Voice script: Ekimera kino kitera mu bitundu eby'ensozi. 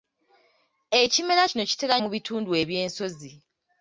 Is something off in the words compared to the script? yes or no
no